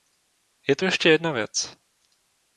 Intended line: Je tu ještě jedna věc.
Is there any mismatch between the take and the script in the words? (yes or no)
no